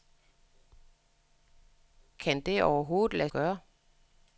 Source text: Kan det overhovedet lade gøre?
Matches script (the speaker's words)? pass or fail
pass